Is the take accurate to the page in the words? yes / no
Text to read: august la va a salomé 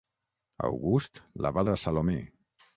yes